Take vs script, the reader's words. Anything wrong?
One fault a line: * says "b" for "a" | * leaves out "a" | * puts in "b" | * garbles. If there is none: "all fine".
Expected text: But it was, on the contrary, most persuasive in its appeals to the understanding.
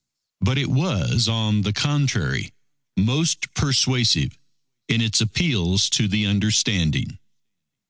all fine